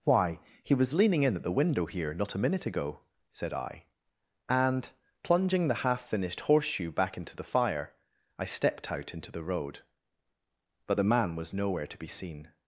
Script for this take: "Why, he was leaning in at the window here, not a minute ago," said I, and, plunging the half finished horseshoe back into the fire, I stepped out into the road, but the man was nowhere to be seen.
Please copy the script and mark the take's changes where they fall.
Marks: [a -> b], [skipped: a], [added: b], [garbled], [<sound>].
"Why, he was leaning in at the window here, not a minute ago," said I, and, plunging the half finished horseshoe back into the fire, I stepped out into the road, but the man was nowhere to be seen.